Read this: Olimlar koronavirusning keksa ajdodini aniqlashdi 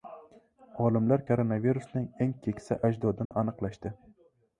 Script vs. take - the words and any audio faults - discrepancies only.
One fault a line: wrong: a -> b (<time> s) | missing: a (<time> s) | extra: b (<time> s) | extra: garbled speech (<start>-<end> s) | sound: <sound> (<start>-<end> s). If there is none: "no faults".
extra: eng (2.3 s)
sound: dropout (3.3-3.3 s)